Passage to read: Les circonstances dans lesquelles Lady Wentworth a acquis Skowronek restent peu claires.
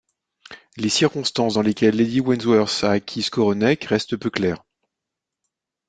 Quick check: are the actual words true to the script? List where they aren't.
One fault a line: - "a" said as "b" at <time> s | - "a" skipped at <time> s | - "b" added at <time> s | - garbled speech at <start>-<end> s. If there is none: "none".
none